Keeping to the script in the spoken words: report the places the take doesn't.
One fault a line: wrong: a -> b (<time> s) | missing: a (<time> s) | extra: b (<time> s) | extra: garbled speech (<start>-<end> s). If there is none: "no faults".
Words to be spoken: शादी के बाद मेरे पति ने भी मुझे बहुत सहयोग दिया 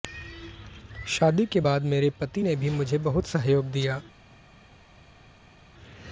no faults